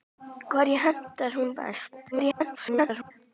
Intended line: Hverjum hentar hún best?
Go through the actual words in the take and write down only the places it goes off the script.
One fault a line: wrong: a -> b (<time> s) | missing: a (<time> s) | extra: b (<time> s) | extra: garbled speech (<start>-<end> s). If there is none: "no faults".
extra: garbled speech (2.1-3.1 s)